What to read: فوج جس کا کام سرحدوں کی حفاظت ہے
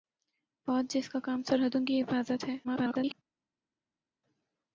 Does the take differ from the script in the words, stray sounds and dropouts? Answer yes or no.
yes